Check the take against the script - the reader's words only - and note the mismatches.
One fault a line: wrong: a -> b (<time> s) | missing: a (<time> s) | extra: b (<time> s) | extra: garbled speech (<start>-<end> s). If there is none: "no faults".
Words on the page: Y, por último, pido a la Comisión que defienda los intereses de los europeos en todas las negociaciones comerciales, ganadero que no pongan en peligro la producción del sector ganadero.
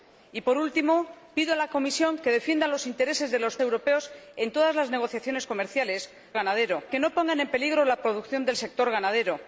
no faults